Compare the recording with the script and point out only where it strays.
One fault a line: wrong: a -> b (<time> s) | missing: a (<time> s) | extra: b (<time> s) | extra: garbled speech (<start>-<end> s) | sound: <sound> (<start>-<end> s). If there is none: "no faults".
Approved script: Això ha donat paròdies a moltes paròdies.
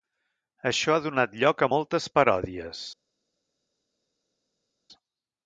wrong: paròdies -> lloc (1.4 s)